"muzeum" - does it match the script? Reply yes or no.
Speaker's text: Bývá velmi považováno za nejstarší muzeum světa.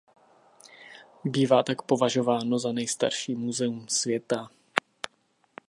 yes